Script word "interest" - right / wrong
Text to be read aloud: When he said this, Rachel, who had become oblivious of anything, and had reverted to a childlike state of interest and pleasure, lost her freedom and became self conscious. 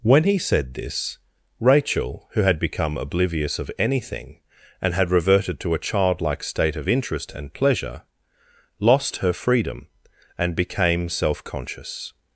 right